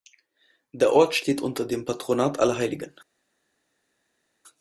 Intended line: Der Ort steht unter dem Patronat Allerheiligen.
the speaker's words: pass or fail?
pass